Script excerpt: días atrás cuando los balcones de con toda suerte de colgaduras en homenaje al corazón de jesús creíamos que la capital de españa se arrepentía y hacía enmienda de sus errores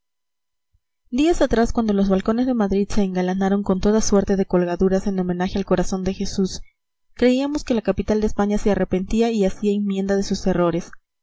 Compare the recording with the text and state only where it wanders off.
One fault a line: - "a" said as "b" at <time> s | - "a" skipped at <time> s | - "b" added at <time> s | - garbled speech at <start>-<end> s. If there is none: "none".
- "madrid se engalanaron" added at 2.5 s